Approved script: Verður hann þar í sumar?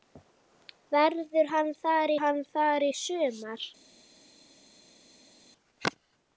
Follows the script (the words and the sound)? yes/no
no